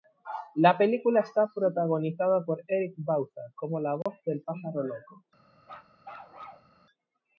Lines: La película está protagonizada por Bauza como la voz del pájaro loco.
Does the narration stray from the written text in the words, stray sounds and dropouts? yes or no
yes